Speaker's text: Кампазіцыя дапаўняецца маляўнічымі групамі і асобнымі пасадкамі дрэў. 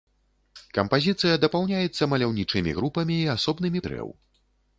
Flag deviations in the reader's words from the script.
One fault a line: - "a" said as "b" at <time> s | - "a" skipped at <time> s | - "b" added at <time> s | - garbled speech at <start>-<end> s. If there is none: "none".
- "пасадкамі" skipped at 3.8 s